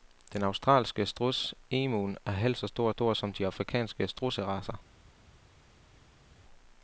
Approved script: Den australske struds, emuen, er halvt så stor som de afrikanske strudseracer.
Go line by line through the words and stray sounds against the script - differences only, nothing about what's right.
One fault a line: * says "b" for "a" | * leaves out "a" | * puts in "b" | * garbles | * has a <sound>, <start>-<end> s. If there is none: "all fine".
* puts in "stor"